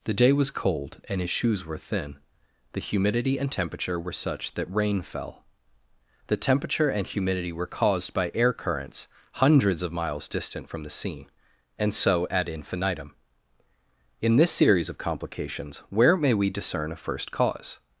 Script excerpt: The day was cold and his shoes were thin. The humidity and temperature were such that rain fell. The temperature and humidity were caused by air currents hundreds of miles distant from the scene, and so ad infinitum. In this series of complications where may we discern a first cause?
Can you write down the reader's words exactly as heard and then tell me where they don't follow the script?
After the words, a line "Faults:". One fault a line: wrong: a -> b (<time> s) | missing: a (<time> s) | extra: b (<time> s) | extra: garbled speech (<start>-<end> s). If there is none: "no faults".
The day was cold and his shoes were thin. The humidity and temperature were such that rain fell. The temperature and humidity were caused by air currents hundreds of miles distant from the scene, and so ad infinitum. In this series of complications where may we discern a first cause?
Faults:
no faults